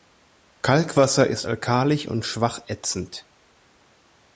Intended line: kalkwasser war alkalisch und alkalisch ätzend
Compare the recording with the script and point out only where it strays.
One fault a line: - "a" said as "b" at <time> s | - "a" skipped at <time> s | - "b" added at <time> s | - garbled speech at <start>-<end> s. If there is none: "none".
- "war" said as "ist" at 1.3 s
- "alkalisch" said as "schwach" at 2.2 s